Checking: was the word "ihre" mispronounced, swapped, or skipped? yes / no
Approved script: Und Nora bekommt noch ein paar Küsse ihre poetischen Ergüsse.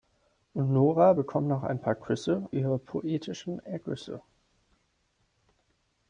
no